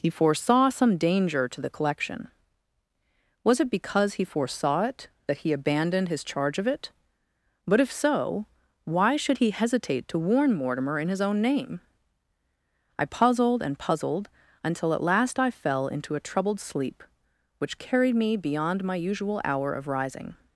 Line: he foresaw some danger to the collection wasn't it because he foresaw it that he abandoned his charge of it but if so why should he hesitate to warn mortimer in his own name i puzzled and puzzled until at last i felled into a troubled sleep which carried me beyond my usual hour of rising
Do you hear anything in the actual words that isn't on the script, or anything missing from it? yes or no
yes